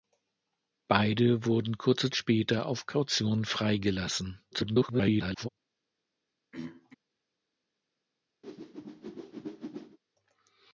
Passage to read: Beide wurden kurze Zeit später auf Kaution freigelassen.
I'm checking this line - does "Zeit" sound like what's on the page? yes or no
no